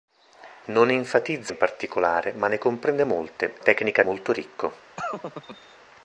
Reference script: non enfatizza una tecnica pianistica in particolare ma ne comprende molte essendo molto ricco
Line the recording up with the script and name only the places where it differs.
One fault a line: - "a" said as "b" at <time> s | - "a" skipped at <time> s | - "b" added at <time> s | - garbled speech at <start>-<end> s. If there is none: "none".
- "una tecnica pianistica" skipped at 1.5 s
- "essendo" said as "tecnica" at 3.6 s